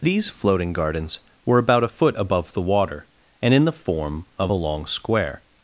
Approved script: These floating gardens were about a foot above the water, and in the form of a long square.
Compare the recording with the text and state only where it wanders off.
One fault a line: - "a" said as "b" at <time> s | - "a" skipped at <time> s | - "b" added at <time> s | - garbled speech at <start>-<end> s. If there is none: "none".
none